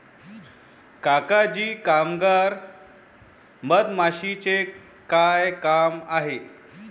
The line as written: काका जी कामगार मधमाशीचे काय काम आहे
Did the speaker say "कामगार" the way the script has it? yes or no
yes